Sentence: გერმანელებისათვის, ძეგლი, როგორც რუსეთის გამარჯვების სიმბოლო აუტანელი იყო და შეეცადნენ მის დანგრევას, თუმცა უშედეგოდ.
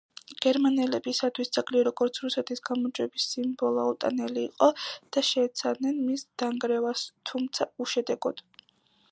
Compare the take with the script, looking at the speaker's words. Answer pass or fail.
pass